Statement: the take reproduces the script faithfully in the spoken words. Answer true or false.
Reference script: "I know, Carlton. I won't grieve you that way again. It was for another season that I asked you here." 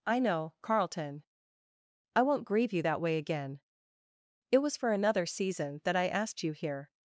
true